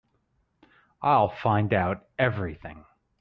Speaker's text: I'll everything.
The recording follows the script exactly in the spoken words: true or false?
false